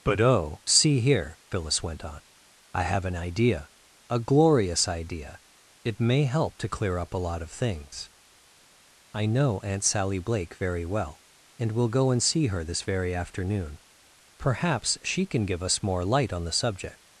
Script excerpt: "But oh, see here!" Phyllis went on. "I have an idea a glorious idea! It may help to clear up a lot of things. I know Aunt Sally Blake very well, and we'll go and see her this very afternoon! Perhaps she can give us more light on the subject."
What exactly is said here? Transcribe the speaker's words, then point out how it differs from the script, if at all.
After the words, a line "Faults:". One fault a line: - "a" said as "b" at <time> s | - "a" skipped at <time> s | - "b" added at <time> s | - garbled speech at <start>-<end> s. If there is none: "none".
"But oh, see here!" Phyllis went on. "I have an idea a glorious idea! It may help to clear up a lot of things. I know Aunt Sally Blake very well, and we'll go and see her this very afternoon! Perhaps she can give us more light on the subject."
Faults:
none